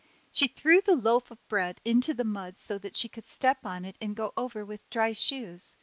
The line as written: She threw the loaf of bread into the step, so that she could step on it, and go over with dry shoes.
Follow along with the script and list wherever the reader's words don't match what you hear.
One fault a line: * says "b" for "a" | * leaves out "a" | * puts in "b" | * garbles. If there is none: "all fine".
* says "mud" for "step"